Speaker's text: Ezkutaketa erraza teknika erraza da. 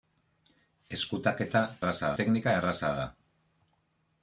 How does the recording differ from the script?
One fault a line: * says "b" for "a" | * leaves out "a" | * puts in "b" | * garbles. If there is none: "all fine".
all fine